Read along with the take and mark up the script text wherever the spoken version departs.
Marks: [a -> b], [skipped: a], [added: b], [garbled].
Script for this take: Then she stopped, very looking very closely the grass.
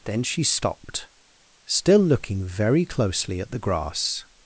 Then she stopped, [very -> still] looking very closely [added: at] the grass.